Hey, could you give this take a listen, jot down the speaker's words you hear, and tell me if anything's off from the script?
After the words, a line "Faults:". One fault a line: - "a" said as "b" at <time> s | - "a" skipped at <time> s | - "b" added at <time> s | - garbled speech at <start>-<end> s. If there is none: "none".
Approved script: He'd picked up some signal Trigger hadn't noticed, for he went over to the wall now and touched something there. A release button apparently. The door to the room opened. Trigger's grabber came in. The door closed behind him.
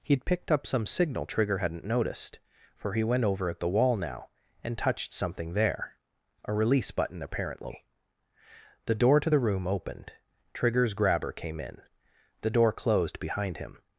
He'd picked up some signal Trigger hadn't noticed, for he went over at the wall now and touched something there. A release button apparently. The door to the room opened. Trigger's grabber came in. The door closed behind him.
Faults:
- "to" said as "at" at 3.5 s